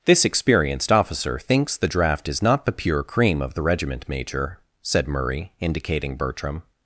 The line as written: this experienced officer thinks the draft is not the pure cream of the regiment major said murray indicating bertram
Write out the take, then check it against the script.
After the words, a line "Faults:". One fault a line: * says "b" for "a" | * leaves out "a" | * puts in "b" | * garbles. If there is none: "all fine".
this experienced officer thinks the draft is not the pure cream of the regiment major said murray indicating bertram
Faults:
all fine